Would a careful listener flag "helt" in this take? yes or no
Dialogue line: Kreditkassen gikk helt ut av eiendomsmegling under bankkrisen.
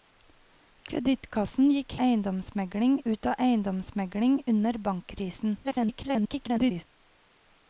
yes